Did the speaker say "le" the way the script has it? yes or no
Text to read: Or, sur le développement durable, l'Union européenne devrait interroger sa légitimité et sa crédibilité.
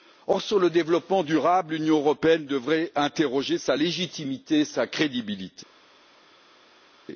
yes